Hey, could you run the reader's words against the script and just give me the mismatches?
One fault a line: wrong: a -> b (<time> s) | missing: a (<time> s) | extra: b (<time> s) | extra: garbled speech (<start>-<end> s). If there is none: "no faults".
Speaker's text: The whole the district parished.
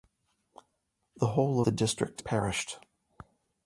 no faults